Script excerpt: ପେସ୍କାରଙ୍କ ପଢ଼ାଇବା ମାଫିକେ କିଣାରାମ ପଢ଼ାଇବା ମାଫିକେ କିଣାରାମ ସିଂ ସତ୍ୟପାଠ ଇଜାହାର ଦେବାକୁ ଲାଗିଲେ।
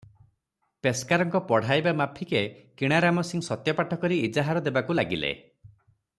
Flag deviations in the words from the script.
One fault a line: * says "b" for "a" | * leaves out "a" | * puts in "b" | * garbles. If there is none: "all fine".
* leaves out "ପଢ଼ାଇବା ମାଫିକେ କିଣାରାମ"
* puts in "କରି"